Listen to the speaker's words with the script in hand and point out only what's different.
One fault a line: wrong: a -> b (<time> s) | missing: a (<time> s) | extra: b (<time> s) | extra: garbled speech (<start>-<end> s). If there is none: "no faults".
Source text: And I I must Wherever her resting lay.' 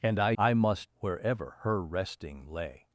no faults